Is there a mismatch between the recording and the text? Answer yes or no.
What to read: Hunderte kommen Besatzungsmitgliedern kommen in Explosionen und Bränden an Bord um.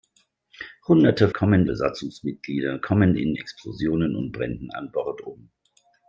no